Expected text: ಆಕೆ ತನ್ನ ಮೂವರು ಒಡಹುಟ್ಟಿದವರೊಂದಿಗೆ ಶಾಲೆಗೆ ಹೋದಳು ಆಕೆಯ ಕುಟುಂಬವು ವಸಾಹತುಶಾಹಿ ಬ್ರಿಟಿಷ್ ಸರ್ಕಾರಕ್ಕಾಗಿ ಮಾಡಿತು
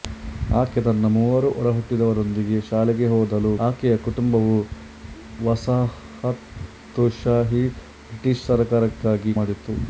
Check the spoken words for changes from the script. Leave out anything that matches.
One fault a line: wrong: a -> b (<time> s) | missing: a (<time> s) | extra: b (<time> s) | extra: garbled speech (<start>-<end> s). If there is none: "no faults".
no faults